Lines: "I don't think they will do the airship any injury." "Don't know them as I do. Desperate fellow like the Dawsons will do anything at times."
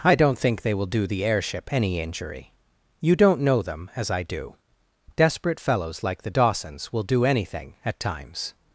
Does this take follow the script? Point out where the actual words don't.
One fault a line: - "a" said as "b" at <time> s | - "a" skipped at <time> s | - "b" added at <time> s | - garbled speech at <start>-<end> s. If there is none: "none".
- "You" added at 3.0 s
- "fellow" said as "fellows" at 5.6 s